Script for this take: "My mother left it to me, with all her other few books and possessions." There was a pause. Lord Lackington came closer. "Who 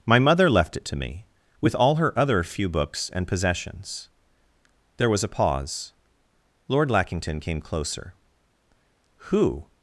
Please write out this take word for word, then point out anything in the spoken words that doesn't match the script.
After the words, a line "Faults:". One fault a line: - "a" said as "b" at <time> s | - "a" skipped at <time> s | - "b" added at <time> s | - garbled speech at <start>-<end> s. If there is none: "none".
"My mother left it to me, with all her other few books and possessions." There was a pause. Lord Lackington came closer. "Who
Faults:
none